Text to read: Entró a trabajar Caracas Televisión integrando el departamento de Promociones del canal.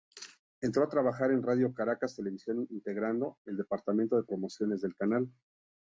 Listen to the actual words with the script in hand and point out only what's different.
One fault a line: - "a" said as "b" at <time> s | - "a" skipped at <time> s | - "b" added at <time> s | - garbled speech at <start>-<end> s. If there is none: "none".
- "en Radio" added at 1.3 s